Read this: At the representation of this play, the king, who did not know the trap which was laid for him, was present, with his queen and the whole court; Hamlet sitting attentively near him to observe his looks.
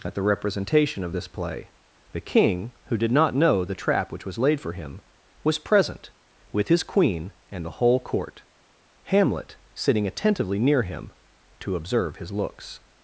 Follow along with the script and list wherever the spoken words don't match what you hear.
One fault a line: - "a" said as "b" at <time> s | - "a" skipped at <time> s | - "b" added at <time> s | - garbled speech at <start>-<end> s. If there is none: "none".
none